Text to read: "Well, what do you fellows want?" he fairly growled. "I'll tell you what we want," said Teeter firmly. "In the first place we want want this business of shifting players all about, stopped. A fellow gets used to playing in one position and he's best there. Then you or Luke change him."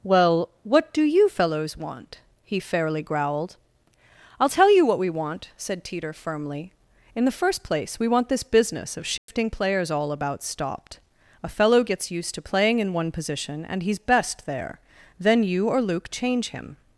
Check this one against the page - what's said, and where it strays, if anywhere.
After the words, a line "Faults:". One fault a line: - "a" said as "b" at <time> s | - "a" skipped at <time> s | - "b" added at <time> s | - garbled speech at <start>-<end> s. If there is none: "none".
"Well, what do you fellows want?" he fairly growled. "I'll tell you what we want," said Teeter firmly. "In the first place we want this business of shifting players all about, stopped. A fellow gets used to playing in one position and he's best there. Then you or Luke change him."
Faults:
- "want" skipped at 8.3 s